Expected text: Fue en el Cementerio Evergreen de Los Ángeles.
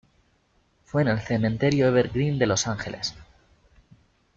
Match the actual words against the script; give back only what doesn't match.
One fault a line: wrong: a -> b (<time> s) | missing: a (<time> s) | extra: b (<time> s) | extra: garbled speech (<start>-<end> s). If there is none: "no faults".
no faults